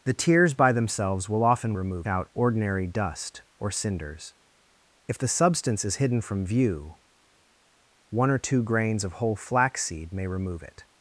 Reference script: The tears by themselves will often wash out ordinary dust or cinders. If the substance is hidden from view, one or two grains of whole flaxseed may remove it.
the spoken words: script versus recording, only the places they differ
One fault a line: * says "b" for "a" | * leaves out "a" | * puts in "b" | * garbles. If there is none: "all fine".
* says "remove" for "wash"